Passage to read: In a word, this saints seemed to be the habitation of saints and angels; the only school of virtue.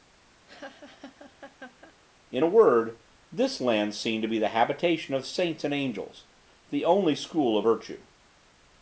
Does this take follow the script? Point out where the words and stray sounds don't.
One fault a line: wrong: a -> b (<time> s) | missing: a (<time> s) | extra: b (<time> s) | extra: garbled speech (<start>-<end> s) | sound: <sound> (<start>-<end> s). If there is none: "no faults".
sound: laugh (0.5-1.9 s)
wrong: saints -> land (3.6 s)